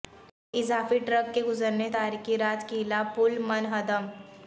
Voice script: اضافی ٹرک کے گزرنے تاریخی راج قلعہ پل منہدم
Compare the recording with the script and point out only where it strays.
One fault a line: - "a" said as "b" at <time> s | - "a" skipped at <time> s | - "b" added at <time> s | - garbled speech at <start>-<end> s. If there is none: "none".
none